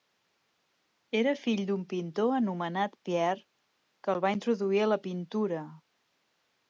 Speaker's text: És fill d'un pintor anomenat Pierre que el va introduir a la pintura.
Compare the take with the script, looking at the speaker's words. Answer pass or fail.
fail